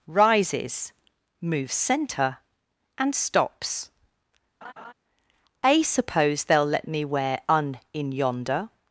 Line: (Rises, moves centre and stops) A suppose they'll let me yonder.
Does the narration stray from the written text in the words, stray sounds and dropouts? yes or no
yes